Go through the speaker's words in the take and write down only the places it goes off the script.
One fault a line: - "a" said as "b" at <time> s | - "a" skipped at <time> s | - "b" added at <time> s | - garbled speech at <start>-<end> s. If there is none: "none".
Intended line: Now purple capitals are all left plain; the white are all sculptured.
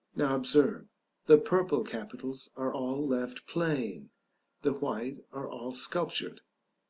- "observe the" added at 0.3 s